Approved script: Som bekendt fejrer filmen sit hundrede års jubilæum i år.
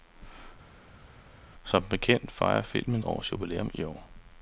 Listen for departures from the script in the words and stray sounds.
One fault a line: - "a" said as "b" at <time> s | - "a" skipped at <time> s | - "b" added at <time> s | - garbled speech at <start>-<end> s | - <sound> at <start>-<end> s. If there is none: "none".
- "sit hundrede" skipped at 3.0 s